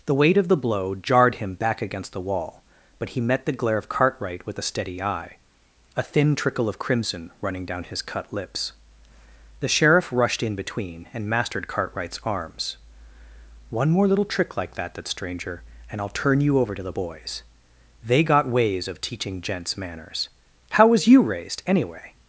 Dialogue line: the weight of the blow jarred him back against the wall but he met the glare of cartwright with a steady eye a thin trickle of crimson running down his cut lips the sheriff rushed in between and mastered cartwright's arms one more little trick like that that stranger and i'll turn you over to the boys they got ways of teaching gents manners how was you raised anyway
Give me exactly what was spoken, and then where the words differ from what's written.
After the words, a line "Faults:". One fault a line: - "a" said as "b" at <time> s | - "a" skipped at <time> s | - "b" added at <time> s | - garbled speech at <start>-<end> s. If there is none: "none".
the weight of the blow jarred him back against the wall but he met the glare of cartwright with a steady eye a thin trickle of crimson running down his cut lips the sheriff rushed in between and mastered cartwright's arms one more little trick like that that stranger and i'll turn you over to the boys they got ways of teaching gents manners how was you raised anyway
Faults:
none